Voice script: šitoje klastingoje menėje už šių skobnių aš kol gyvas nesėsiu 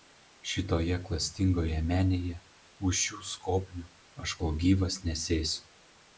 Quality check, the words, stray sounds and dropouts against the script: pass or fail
pass